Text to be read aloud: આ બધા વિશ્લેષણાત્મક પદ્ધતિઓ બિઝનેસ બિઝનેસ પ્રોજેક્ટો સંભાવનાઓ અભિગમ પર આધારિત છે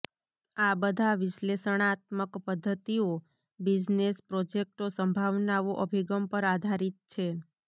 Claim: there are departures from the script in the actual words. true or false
true